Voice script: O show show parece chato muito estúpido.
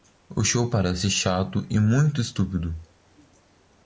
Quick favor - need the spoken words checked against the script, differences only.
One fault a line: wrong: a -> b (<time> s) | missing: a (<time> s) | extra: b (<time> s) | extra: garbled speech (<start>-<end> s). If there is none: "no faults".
missing: show (0.7 s)
extra: e (1.7 s)